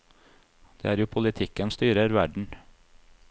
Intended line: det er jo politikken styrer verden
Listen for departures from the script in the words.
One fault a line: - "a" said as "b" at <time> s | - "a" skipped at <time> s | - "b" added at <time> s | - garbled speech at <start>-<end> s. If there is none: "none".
none